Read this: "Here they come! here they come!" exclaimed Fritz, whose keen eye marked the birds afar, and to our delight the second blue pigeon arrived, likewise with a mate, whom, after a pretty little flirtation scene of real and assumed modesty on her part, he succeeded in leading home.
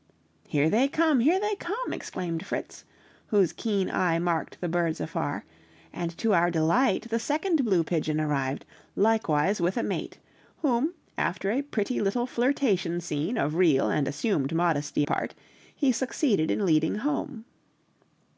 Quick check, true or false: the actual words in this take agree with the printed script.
false